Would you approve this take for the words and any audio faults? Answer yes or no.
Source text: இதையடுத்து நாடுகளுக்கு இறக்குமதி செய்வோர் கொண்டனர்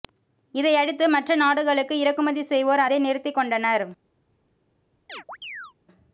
no